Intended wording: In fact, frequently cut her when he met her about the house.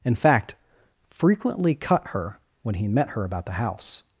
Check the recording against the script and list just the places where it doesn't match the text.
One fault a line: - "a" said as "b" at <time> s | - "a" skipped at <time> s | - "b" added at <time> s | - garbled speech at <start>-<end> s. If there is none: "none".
none